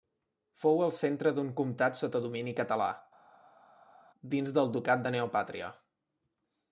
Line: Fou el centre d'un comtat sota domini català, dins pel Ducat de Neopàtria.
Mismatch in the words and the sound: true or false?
true